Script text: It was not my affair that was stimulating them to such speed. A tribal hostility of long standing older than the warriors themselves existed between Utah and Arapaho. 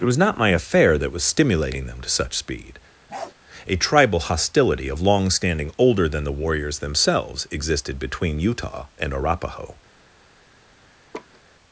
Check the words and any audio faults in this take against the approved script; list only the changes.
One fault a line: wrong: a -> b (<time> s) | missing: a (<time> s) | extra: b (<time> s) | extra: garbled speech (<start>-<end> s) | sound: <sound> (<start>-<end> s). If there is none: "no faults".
sound: bark (3.1-3.3 s)
sound: laugh (11.1-11.4 s)